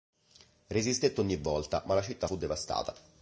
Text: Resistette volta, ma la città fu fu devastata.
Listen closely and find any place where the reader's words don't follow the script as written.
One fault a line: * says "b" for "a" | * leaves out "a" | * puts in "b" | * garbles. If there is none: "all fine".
* puts in "ogni"
* leaves out "fu"